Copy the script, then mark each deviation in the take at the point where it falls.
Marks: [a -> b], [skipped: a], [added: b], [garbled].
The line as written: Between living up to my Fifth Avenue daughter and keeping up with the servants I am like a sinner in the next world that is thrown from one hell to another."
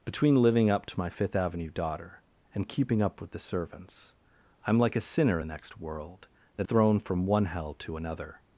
Between living up to my Fifth Avenue daughter and keeping up with the servants I am like a sinner [skipped: in] the next world that [skipped: is] thrown from one hell to another."